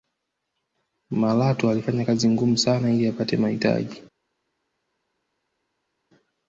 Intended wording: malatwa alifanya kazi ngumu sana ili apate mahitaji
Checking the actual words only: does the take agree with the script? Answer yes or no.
yes